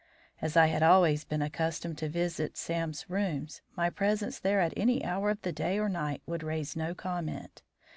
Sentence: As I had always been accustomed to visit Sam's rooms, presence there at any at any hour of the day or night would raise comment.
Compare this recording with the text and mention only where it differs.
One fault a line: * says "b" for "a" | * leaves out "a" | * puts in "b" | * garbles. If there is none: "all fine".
* puts in "my"
* leaves out "at any"
* puts in "no"